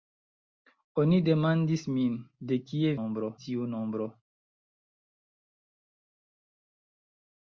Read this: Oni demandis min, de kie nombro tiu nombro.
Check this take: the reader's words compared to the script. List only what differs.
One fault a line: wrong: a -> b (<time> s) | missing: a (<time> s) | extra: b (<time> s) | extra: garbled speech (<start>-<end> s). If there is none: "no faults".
no faults